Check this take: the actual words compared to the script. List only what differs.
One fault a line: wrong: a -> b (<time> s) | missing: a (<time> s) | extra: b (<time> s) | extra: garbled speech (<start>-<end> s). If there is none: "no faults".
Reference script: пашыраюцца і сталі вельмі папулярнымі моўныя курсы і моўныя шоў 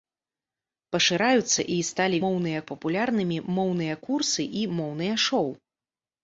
wrong: вельмі -> моўныя (2.3 s)